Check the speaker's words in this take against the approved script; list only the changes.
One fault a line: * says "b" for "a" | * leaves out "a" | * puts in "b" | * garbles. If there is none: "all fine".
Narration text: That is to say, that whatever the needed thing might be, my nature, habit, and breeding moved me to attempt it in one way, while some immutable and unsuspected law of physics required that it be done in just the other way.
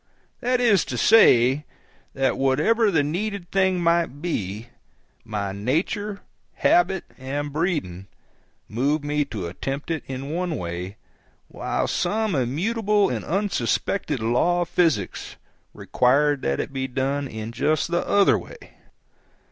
all fine